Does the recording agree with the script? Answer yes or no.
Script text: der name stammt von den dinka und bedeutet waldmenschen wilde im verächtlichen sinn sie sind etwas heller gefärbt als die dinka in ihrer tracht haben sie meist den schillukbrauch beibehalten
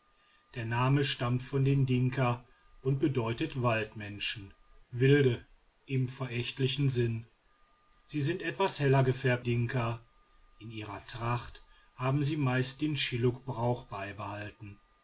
no